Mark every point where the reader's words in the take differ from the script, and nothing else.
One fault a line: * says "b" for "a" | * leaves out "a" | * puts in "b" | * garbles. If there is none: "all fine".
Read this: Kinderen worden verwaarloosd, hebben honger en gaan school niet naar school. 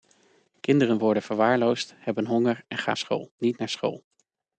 all fine